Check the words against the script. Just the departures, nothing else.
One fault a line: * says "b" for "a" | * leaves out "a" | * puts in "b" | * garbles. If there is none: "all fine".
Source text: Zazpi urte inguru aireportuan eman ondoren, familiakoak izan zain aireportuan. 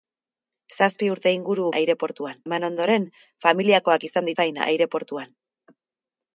all fine